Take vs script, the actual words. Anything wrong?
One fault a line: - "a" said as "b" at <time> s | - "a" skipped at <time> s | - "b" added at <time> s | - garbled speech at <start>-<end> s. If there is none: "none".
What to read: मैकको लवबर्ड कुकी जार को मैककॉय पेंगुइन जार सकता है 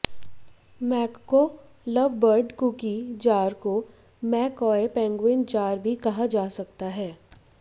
- "भी कहा जा" added at 5.8 s